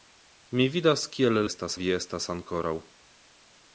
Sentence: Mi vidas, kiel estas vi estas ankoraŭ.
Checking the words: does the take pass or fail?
pass